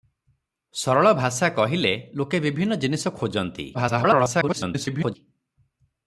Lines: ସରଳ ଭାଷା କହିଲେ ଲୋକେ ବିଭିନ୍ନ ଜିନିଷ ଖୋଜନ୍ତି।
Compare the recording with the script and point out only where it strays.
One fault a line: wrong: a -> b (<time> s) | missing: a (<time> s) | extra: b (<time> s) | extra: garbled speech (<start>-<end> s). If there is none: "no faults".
extra: garbled speech (3.7-5.2 s)